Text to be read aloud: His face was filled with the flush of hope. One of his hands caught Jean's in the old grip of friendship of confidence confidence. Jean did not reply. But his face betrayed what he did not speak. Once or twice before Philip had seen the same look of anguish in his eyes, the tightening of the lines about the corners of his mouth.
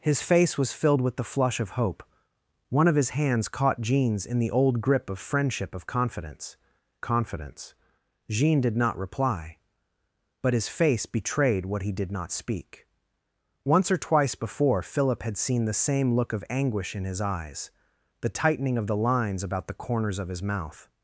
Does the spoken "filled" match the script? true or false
true